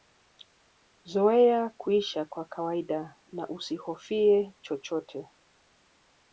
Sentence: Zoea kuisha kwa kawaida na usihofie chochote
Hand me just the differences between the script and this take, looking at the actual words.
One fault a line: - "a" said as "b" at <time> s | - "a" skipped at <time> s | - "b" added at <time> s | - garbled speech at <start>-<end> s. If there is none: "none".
none